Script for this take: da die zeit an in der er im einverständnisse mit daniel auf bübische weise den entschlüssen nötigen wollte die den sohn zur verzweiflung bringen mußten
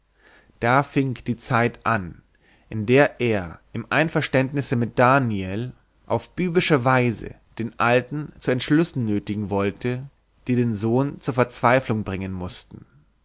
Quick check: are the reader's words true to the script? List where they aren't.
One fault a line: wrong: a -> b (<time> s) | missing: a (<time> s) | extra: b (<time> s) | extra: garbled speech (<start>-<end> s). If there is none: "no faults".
extra: fing (0.8 s)
extra: alten zu (7.8 s)